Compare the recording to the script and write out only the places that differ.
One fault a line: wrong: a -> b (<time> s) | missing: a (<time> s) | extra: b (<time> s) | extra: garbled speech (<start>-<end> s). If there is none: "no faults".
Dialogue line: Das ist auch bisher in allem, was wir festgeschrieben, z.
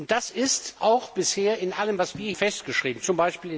no faults